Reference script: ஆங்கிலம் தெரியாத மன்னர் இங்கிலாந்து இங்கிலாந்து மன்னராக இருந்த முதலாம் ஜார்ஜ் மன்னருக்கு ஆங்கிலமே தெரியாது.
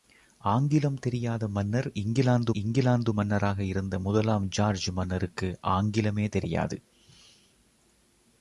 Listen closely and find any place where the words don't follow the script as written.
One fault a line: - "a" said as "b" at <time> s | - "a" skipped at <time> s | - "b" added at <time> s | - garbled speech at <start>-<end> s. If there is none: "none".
none